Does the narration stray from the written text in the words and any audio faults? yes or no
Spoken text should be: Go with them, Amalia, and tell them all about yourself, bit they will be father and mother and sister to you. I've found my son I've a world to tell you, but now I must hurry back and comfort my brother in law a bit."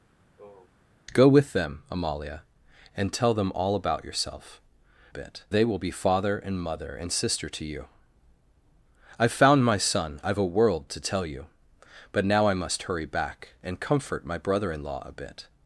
yes